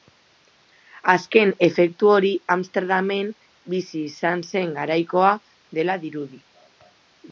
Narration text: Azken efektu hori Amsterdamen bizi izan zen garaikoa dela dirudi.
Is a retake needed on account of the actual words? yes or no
no